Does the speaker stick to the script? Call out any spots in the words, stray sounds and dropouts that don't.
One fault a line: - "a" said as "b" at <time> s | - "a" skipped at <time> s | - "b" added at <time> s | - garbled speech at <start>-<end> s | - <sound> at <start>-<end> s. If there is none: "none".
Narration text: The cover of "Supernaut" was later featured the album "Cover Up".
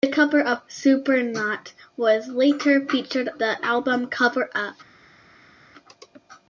none